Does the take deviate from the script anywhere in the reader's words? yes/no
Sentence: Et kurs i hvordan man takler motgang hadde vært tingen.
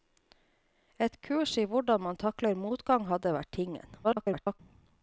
yes